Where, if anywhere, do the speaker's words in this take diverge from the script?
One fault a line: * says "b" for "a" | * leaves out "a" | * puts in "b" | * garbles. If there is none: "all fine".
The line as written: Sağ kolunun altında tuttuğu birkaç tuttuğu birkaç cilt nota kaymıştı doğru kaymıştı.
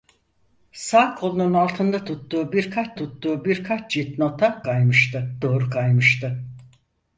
all fine